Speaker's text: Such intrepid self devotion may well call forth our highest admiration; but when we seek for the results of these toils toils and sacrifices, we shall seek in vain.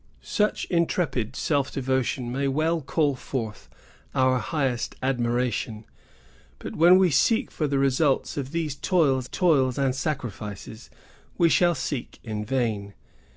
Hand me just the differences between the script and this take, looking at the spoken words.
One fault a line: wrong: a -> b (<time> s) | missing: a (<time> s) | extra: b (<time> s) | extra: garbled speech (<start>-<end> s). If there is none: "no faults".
no faults